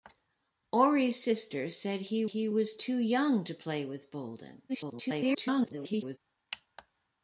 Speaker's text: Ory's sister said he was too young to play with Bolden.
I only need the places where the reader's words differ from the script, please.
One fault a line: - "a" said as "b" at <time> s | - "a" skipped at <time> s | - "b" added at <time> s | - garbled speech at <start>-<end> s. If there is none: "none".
- "he" added at 2.2 s
- garbled speech at 4.7-6.2 s